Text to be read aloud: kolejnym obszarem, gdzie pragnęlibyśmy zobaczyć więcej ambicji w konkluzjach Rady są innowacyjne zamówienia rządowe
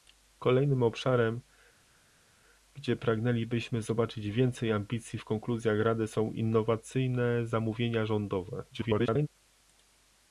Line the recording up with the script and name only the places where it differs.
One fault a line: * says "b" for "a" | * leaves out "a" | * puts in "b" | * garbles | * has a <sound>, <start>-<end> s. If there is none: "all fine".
* garbles